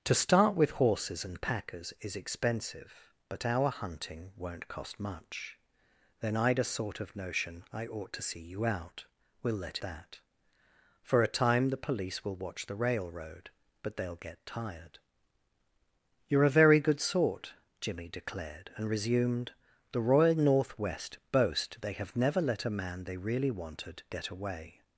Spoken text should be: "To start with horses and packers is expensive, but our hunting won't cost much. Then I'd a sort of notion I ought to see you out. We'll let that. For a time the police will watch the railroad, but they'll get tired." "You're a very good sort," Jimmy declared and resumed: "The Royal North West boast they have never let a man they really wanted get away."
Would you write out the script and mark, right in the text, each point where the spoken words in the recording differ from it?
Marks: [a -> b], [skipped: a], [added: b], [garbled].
"To start with horses and packers is expensive, but our hunting won't cost much. Then I'd a sort of notion I ought to see you out. We'll let that. For a time the police will watch the railroad, but they'll get tired." "You're a very good sort," Jimmy declared and resumed: "The Royal North West boast they have never let a man they really wanted get away."